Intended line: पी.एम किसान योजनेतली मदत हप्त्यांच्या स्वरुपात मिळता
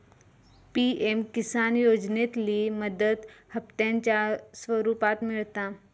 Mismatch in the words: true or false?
false